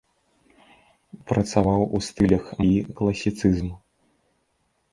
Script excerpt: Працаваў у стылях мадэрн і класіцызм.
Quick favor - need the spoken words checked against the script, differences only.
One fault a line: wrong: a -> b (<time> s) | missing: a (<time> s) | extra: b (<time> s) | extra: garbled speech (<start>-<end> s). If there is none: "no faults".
missing: мадэрн (2.5 s)